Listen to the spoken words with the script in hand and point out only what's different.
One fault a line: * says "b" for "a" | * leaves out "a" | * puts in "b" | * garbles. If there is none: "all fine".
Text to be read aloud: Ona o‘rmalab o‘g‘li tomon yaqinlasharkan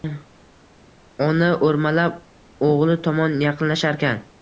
all fine